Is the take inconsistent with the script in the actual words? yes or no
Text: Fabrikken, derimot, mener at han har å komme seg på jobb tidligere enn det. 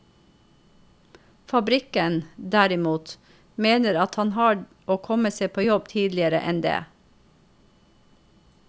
no